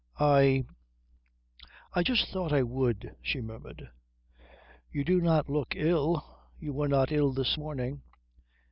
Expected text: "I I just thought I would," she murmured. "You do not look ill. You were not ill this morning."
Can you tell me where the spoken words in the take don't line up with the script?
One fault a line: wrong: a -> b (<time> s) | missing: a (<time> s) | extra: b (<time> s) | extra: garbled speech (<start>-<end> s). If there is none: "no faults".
no faults